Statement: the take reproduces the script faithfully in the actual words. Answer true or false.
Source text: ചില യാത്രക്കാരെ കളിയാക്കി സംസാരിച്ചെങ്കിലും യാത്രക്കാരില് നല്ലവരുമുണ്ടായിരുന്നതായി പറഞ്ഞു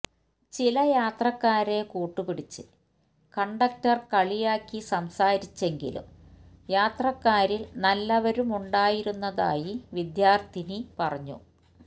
false